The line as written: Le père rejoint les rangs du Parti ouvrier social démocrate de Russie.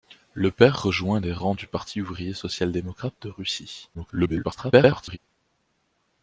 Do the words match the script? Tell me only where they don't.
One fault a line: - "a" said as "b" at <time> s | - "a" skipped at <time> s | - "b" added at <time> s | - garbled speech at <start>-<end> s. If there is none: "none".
- garbled speech at 3.9-5.2 s